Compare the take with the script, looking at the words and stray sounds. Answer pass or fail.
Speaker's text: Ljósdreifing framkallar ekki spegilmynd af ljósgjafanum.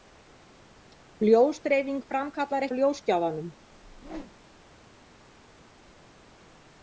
fail